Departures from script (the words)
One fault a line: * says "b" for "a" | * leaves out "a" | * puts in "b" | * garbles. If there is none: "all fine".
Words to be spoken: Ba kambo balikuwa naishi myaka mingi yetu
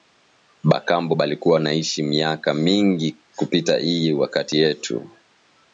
* puts in "kupita iyi wakati"